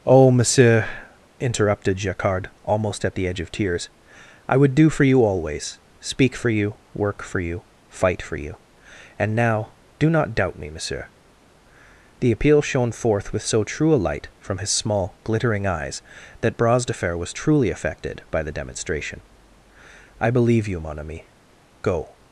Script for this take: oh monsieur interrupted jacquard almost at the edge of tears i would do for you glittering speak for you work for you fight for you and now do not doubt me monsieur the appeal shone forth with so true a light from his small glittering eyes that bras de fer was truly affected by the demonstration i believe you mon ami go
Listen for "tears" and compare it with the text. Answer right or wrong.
right